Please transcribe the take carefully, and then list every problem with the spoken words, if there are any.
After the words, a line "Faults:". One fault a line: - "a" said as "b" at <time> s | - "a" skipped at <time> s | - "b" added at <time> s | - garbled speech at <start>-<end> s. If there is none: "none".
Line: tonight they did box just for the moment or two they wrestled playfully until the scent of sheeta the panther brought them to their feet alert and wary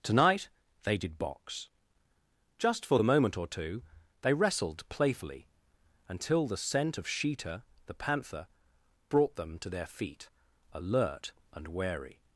tonight they did box just for the moment or two they wrestled playfully until the scent of sheeta the panther brought them to their feet alert and wary
Faults:
none